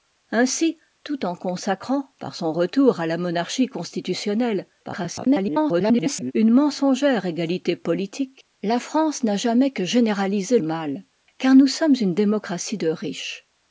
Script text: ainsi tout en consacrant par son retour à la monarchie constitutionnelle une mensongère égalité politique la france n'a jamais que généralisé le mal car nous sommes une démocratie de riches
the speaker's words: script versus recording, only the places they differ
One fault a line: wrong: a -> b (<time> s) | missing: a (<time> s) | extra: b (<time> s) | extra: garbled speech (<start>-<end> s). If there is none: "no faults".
extra: garbled speech (4.8-6.3 s)
missing: le (10.6 s)